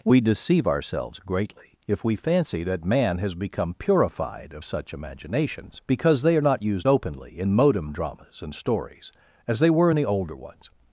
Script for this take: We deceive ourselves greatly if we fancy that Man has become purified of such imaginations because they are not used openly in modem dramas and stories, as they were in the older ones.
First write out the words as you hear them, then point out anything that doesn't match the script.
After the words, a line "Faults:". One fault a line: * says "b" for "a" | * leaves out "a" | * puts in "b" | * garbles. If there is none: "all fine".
We deceive ourselves greatly if we fancy that Man has become purified of such imaginations because they are not used openly in modem dramas and stories, as they were in the older ones.
Faults:
all fine